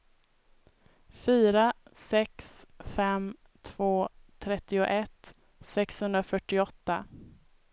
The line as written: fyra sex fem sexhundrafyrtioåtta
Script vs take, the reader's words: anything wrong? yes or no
yes